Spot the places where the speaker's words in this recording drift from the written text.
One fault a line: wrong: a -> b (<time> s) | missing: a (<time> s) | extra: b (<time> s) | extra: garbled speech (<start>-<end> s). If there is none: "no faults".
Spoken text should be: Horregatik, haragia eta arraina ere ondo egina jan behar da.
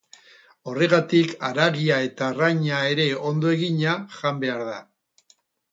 no faults